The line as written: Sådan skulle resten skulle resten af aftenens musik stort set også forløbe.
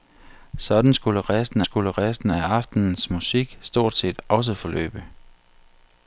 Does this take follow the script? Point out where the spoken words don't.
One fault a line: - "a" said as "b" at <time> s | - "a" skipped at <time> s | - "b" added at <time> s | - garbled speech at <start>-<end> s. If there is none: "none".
none